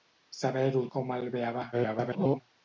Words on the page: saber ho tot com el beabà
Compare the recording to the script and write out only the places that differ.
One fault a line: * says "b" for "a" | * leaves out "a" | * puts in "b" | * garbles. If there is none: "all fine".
* leaves out "tot"
* garbles